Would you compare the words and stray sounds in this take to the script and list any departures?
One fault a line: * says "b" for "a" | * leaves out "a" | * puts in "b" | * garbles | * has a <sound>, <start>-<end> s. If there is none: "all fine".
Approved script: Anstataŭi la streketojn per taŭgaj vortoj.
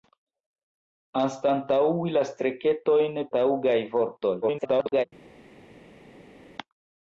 * leaves out "per"
* garbles